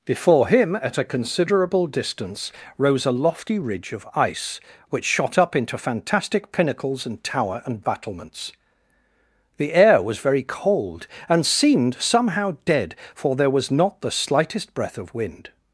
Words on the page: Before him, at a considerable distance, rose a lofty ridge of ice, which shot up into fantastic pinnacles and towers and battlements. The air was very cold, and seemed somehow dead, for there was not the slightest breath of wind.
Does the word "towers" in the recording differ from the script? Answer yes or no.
yes